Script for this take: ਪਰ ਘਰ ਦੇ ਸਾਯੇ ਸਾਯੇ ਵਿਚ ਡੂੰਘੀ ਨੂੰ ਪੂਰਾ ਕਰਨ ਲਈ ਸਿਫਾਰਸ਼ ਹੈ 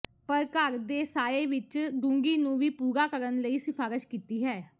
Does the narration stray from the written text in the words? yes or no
yes